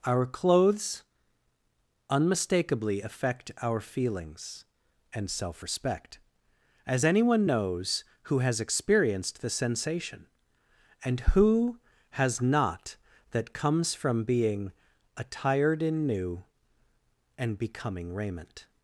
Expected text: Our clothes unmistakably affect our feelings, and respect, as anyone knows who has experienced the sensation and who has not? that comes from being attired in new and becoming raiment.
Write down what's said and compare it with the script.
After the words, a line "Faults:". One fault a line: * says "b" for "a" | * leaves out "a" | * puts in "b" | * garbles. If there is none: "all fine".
Our clothes unmistakably affect our feelings, and self respect, as anyone knows who has experienced the sensation and who has not? that comes from being attired in new and becoming raiment.
Faults:
* puts in "self"